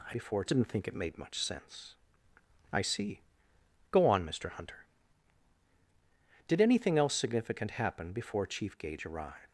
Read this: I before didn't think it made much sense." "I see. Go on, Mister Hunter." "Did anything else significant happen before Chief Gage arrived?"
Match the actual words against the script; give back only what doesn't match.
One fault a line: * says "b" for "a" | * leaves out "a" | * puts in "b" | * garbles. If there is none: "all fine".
all fine